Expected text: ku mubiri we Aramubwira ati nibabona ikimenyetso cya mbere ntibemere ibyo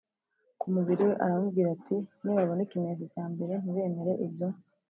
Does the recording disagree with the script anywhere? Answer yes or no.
no